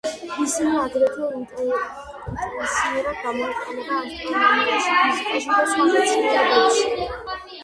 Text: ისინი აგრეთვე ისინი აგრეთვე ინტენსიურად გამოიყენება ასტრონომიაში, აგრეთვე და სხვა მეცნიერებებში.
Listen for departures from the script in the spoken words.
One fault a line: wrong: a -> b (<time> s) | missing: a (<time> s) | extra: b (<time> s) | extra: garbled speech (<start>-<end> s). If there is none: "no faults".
missing: ისინი აგრეთვე (1.3 s)
wrong: აგრეთვე -> ფიზიკაში (5.0 s)